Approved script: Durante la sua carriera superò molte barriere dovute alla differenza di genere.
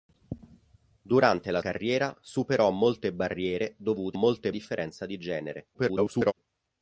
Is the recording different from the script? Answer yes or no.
yes